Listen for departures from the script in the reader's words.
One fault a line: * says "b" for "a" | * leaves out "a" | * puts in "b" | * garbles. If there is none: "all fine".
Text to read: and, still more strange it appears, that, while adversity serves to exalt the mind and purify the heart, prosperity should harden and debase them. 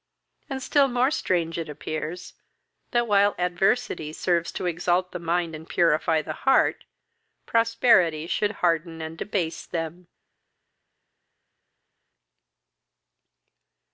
all fine